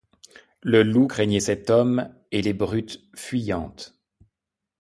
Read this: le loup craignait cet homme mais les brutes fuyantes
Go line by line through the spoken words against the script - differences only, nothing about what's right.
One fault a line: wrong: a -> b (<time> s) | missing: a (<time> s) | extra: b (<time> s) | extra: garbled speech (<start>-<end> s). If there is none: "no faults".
wrong: mais -> et (2.3 s)